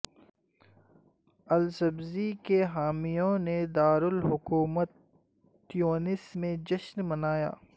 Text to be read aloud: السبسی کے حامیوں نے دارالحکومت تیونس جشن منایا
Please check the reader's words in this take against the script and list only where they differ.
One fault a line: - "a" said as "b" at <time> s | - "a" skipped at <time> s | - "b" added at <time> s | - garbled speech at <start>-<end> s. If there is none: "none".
- "میں" added at 6.3 s